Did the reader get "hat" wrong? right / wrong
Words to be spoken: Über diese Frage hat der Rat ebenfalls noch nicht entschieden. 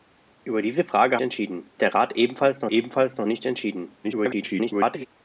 wrong